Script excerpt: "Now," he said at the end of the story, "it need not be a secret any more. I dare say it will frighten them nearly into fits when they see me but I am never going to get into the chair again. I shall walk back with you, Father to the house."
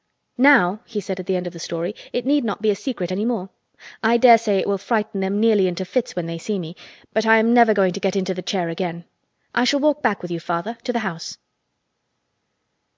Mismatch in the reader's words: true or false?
false